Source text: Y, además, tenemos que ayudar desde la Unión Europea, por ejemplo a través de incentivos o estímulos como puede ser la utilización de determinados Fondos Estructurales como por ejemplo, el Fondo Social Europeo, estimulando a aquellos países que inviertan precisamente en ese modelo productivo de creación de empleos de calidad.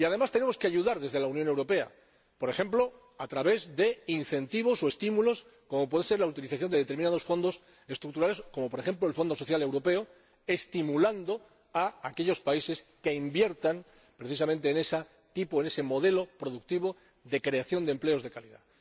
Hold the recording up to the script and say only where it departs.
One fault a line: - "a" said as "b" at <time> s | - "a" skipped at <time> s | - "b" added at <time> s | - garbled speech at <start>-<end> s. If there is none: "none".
none